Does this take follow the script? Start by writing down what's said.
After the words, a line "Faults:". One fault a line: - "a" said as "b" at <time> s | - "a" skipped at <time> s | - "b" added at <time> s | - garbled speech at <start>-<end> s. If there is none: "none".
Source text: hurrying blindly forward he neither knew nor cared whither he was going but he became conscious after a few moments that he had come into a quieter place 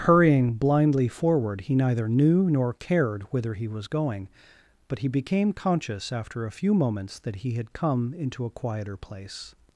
hurrying blindly forward he neither knew nor cared whither he was going but he became conscious after a few moments that he had come into a quieter place
Faults:
none